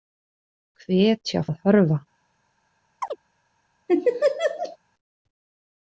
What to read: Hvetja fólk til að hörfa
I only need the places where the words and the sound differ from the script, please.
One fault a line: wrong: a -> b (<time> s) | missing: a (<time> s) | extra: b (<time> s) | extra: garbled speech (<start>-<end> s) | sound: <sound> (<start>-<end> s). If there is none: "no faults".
missing: fólk til (1.4 s)
sound: chirp (3.0-3.2 s)
sound: laugh (3.9-4.8 s)